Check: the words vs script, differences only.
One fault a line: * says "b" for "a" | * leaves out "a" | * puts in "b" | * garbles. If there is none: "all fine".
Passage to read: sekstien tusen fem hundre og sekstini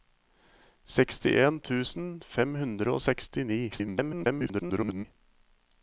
* garbles